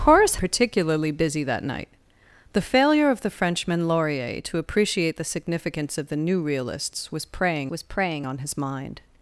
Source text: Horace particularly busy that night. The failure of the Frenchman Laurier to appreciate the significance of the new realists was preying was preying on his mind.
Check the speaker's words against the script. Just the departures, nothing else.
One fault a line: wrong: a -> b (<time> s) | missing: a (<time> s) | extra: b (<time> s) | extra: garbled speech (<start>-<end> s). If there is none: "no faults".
no faults